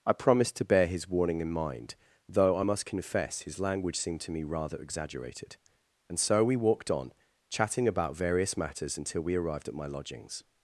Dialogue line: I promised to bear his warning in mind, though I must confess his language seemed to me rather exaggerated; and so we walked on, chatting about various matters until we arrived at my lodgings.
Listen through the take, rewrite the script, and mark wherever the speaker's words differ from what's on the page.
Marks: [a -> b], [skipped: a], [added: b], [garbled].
I promised to bear his warning in mind, though I must confess his language seemed to me rather exaggerated; and so we walked on, chatting about various matters until we arrived at my lodgings.